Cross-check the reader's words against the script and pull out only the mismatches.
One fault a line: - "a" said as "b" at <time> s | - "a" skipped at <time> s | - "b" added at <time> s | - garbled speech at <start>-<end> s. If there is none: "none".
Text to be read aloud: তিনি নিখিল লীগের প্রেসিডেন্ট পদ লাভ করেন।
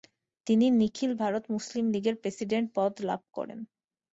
- "ভারত মুসলিম" added at 1.2 s